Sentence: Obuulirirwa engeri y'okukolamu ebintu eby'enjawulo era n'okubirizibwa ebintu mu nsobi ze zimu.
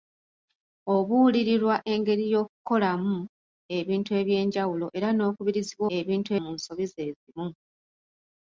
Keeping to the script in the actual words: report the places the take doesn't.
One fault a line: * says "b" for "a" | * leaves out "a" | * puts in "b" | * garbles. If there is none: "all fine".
all fine